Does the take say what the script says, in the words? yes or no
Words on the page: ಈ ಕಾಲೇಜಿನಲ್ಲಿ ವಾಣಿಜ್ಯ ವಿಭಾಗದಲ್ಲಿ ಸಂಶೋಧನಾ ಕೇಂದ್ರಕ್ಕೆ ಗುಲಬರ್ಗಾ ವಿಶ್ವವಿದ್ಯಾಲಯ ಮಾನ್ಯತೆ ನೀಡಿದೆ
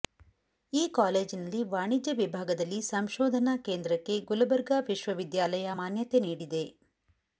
yes